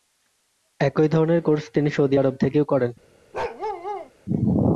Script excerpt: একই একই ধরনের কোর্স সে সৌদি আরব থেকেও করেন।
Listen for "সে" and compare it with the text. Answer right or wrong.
wrong